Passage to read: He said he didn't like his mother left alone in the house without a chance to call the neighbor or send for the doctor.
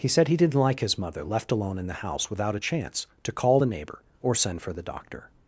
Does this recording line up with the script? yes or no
yes